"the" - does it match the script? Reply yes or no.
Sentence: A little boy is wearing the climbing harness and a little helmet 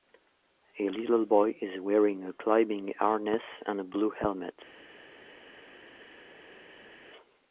no